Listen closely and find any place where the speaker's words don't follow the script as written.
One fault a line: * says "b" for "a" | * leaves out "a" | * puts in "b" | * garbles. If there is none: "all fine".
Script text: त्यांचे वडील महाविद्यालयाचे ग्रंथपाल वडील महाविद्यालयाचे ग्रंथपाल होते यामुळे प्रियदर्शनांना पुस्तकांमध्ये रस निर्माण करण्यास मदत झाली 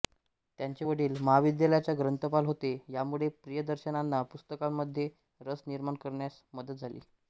* leaves out "वडील महाविद्यालयाचे ग्रंथपाल"